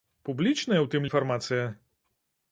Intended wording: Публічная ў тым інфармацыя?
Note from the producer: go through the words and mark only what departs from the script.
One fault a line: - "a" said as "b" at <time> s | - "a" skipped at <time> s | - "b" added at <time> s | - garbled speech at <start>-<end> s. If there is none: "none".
none